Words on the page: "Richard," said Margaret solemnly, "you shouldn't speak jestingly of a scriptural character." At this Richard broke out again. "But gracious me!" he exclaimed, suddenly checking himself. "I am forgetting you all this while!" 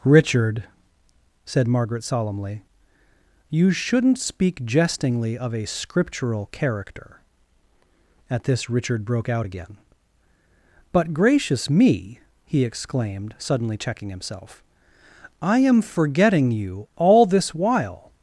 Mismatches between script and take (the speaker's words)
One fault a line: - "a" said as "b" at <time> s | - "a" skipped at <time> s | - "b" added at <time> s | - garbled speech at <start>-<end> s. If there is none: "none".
none